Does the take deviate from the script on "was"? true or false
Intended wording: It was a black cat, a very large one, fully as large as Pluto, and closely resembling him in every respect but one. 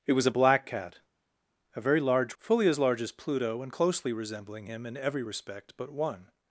false